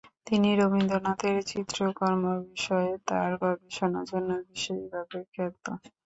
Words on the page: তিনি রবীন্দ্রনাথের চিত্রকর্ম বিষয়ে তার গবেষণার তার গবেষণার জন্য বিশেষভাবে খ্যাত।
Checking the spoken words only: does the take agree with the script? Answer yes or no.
no